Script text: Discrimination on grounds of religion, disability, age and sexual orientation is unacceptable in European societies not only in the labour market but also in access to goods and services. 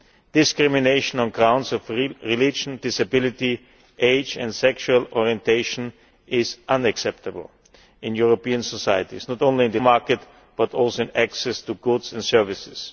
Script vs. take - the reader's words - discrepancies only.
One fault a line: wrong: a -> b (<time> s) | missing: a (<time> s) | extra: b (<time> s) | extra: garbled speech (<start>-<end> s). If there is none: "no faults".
missing: labour (9.8 s)